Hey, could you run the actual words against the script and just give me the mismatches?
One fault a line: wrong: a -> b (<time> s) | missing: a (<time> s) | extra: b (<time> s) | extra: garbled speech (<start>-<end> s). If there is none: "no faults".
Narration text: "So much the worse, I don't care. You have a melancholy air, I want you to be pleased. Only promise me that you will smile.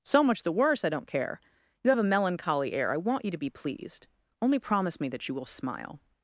no faults